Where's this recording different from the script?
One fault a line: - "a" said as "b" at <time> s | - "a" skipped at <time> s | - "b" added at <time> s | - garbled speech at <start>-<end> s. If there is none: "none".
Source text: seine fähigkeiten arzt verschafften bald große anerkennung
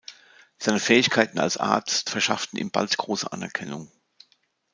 - "als" added at 1.4 s
- "ihm" added at 2.6 s